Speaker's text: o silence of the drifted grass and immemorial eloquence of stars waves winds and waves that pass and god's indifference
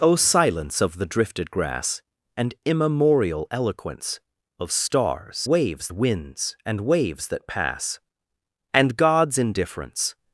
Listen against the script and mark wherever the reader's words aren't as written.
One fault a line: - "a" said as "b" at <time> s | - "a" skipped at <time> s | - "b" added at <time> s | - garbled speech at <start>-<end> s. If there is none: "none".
none